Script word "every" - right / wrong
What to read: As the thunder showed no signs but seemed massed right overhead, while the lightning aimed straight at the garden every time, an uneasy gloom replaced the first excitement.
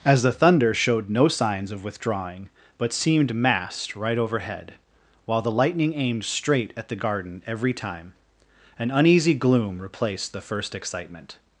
right